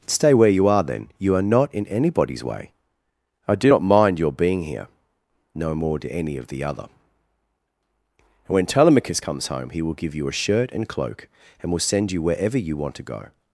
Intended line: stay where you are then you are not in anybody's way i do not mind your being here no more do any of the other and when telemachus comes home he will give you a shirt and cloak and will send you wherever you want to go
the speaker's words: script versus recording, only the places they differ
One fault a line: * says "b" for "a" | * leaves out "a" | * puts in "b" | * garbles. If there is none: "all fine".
all fine